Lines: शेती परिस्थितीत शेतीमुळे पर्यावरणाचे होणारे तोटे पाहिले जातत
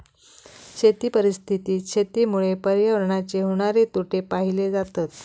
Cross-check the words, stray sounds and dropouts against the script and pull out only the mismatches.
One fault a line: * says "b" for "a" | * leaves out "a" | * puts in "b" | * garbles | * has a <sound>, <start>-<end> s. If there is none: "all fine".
all fine